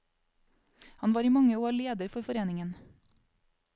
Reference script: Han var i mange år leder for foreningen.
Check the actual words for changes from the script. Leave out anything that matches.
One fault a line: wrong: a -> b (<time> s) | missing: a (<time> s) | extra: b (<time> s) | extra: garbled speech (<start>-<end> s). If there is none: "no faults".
no faults